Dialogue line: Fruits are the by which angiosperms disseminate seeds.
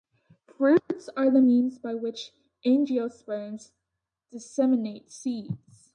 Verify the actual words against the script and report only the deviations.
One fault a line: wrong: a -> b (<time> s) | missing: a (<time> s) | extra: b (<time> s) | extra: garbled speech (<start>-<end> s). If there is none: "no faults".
extra: means (1.4 s)